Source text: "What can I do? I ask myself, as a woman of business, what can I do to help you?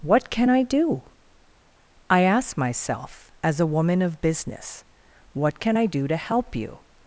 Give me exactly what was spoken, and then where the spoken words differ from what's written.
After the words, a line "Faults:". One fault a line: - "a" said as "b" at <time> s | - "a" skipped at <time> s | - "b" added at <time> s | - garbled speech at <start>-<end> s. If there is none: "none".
"What can I do? I ask myself, as a woman of business, what can I do to help you?
Faults:
none